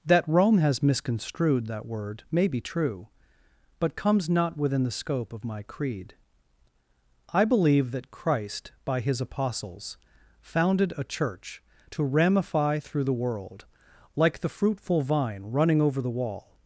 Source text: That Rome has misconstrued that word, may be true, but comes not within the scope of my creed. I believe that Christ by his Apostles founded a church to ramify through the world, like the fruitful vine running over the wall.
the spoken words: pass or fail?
pass